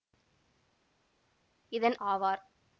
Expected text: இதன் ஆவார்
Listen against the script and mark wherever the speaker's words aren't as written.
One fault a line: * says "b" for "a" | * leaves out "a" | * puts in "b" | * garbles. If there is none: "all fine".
all fine